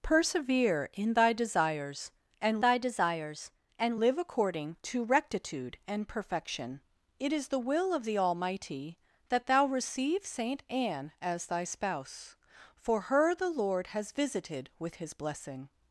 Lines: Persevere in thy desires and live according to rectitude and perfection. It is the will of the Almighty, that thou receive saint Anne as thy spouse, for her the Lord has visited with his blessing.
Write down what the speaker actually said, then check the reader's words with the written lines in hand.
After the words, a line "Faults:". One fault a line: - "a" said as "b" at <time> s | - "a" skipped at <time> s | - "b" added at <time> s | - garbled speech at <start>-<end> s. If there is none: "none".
Persevere in thy desires and thy desires and live according to rectitude and perfection. It is the will of the Almighty, that thou receive saint Anne as thy spouse, for her the Lord has visited with his blessing.
Faults:
- "thy desires and" added at 2.6 s